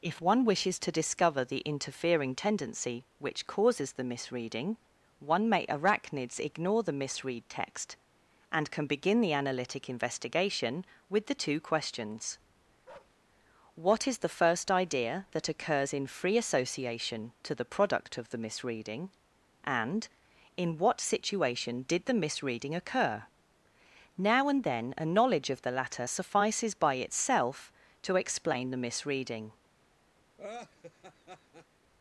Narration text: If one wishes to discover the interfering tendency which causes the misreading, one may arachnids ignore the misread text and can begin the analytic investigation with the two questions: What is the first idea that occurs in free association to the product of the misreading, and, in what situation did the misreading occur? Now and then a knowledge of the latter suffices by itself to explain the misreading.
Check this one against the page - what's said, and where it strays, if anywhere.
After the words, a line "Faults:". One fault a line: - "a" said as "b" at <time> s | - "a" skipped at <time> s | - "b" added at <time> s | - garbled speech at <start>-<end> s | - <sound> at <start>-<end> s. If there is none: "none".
If one wishes to discover the interfering tendency which causes the misreading, one may arachnids ignore the misread text and can begin the analytic investigation with the two questions: What is the first idea that occurs in free association to the product of the misreading, and, in what situation did the misreading occur? Now and then a knowledge of the latter suffices by itself to explain the misreading.
Faults:
- bark at 12.9-13.2 s
- laugh at 30.4-31.7 s